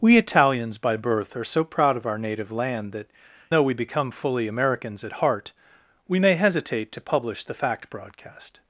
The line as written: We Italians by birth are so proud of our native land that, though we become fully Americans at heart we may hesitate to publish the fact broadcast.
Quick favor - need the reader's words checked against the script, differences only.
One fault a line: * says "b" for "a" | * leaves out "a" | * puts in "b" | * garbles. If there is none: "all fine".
all fine